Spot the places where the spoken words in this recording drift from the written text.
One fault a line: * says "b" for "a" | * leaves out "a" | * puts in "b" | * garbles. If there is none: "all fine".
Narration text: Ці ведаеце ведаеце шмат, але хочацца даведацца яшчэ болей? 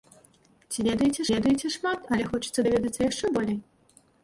all fine